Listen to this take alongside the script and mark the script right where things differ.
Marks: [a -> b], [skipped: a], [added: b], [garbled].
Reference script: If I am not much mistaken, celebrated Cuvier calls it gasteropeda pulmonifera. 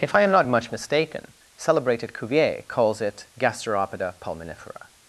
If I am not much mistaken, celebrated Cuvier calls it gasteropeda pulmonifera.